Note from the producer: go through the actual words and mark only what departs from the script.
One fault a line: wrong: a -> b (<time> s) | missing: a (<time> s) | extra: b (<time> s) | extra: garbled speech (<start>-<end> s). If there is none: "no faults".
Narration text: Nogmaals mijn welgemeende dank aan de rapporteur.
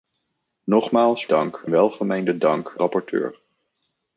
wrong: mijn -> dank (1.2 s)
missing: aan de (2.8 s)